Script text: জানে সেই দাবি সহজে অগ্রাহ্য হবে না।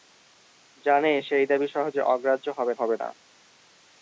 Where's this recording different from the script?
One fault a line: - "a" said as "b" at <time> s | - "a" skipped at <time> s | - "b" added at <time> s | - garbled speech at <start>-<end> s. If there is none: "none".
- "হবে" added at 2.8 s